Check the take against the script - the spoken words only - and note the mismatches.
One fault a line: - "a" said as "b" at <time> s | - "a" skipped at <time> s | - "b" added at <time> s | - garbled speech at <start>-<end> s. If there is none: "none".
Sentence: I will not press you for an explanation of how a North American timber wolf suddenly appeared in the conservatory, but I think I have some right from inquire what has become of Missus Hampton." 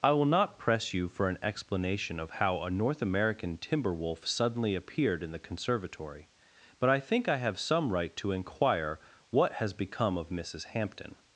- "from" said as "to" at 8.2 s